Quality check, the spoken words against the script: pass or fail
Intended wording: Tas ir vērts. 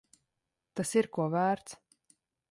fail